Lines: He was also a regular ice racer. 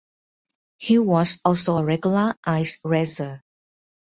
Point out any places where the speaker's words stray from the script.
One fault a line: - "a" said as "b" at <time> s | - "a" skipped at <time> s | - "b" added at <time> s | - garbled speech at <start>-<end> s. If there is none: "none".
none